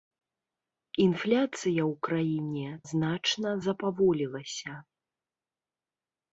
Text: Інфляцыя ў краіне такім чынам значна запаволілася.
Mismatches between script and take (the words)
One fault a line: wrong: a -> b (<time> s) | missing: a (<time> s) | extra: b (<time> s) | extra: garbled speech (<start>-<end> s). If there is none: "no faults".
missing: такім чынам (2.7 s)